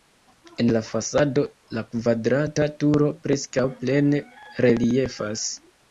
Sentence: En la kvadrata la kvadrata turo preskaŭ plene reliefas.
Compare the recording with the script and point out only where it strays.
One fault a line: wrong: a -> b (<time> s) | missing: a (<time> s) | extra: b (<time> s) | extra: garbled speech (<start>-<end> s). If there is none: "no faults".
wrong: kvadrata -> fasado (0.8 s)